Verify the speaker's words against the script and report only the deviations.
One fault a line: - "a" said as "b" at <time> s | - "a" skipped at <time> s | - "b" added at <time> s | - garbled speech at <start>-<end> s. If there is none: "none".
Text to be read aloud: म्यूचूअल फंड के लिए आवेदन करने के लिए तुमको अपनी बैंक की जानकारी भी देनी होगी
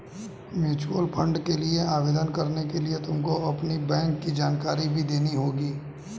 none